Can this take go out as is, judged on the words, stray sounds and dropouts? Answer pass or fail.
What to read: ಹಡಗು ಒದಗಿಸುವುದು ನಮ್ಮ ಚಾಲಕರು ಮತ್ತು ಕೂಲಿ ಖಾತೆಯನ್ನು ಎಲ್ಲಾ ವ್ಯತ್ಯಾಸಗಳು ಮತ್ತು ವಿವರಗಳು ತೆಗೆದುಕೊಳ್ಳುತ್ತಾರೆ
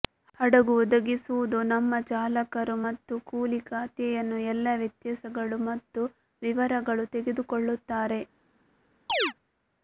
fail